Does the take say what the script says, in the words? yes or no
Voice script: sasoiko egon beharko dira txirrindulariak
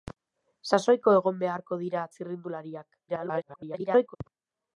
no